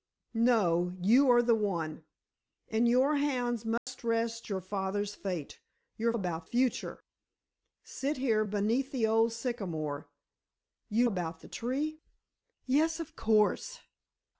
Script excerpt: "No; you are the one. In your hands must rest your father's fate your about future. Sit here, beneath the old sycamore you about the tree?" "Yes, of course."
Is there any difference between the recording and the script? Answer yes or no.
no